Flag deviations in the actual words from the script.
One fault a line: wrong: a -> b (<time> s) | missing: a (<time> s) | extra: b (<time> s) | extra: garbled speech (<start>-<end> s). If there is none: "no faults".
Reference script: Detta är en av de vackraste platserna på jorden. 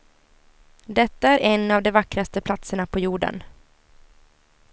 no faults